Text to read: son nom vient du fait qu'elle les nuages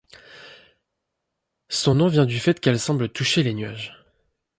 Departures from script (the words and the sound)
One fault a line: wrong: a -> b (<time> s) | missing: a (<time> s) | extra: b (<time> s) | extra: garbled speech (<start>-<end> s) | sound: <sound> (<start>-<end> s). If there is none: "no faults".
extra: semble toucher (2.8 s)